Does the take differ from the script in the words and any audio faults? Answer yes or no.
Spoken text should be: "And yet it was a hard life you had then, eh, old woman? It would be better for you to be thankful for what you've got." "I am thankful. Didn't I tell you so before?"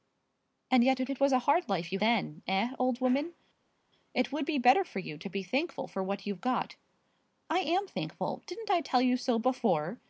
yes